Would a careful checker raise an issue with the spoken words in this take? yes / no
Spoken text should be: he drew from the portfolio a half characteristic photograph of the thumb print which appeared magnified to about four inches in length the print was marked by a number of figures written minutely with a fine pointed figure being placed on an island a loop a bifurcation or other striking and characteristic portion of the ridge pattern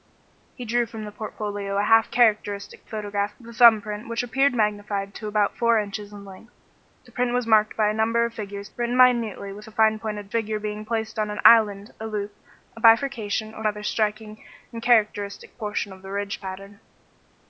no